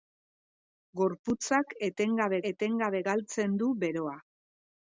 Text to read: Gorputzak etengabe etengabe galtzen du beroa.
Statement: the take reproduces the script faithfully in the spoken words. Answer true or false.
true